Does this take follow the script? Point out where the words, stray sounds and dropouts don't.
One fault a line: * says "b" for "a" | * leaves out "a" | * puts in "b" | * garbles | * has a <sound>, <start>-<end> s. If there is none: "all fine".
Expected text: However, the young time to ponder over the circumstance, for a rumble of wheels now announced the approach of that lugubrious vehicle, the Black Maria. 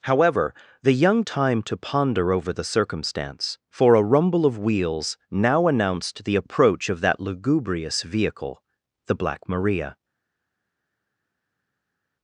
all fine